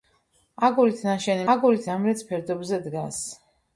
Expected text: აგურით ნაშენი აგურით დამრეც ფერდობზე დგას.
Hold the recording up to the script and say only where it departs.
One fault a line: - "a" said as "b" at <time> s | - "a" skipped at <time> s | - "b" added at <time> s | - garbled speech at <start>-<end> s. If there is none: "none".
none